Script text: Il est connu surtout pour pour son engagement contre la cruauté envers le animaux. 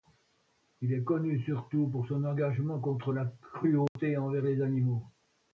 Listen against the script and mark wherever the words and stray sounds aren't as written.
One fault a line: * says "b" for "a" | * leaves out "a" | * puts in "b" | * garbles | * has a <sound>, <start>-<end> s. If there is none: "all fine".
* leaves out "pour"
* has a dropout, 3.9-4.0 s
* says "les" for "le"